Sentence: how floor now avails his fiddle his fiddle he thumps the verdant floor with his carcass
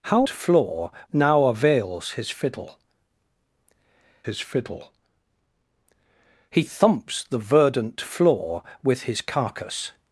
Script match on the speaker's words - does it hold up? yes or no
yes